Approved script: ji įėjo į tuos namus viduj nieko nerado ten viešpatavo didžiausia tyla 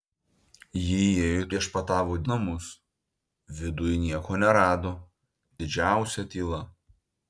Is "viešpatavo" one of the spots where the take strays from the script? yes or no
yes